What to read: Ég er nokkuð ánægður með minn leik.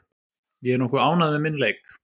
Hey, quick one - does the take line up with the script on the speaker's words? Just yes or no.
yes